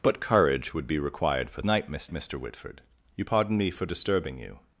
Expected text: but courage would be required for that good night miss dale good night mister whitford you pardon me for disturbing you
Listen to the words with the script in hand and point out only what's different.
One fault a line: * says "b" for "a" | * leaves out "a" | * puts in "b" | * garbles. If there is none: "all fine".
* leaves out "that good"
* leaves out "dale good night"